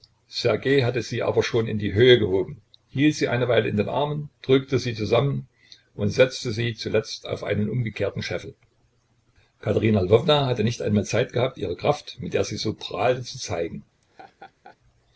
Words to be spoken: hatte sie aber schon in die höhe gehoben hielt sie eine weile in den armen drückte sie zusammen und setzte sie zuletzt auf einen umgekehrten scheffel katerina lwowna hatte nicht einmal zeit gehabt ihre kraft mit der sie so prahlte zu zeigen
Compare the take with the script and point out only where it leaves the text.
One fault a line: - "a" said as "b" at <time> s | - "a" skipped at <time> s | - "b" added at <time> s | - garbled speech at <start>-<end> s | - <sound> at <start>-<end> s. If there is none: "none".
- laugh at 14.0-14.8 s